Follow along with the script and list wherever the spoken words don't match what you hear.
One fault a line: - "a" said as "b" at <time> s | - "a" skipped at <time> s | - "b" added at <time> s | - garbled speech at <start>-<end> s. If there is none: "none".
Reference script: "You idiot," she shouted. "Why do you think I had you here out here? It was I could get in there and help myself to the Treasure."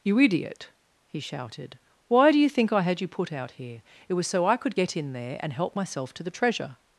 - "she" said as "he" at 1.1 s
- "here" said as "put" at 3.1 s
- "so" added at 4.3 s